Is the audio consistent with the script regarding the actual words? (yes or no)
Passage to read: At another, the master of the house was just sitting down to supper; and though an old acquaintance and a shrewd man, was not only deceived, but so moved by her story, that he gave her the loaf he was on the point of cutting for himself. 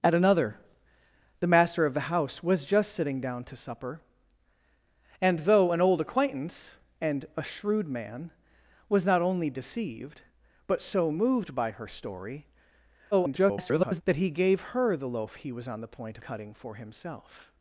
no